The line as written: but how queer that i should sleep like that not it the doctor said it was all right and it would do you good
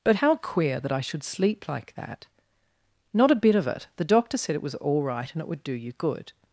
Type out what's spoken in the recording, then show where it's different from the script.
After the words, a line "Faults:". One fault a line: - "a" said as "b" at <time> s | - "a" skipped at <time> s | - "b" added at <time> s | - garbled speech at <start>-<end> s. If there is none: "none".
but how queer that i should sleep like that not a bit of it the doctor said it was all right and it would do you good
Faults:
- "a bit of" added at 3.3 s